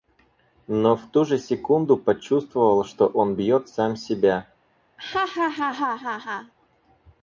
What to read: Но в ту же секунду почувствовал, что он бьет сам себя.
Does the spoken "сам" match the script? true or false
true